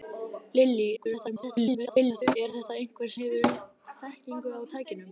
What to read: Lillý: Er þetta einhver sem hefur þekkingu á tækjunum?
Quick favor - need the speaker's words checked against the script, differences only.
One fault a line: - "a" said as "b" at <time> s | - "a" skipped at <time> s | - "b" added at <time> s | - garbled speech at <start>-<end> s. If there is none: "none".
- garbled speech at 1.0-2.4 s
- "sem" skipped at 3.1 s